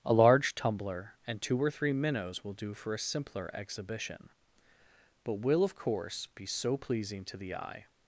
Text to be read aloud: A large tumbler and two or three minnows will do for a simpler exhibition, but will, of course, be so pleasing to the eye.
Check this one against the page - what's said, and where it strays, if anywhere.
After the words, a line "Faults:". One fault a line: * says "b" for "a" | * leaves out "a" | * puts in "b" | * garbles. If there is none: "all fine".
A large tumbler and two or three minnows will do for a simpler exhibition, but will, of course, be so pleasing to the eye.
Faults:
all fine